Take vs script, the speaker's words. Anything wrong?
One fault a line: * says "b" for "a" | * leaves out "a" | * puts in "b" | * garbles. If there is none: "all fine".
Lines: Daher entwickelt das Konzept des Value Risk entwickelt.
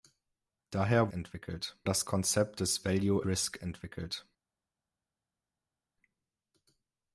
all fine